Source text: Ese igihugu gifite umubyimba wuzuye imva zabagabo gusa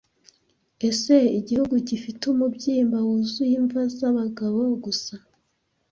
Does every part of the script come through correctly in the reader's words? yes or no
yes